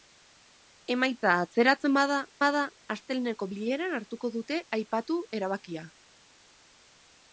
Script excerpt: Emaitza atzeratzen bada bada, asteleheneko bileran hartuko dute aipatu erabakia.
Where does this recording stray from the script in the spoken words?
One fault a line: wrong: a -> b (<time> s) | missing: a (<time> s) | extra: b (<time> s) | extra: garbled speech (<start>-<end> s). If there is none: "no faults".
no faults